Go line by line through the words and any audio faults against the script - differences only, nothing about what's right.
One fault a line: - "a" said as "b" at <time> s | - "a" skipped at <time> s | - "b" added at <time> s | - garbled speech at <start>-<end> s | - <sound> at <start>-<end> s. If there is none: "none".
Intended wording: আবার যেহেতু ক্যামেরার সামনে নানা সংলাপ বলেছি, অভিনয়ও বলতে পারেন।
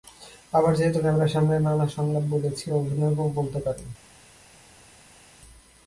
none